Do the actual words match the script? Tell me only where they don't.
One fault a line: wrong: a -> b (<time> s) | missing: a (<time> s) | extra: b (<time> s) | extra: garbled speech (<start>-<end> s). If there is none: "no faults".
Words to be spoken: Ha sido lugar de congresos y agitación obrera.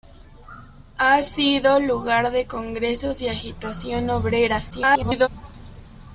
extra: garbled speech (4.7-5.3 s)